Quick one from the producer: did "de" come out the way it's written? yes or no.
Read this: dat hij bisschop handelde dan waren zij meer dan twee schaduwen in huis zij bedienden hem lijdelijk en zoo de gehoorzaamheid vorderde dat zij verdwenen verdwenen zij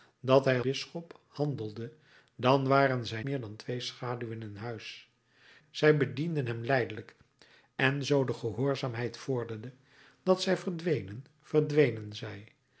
yes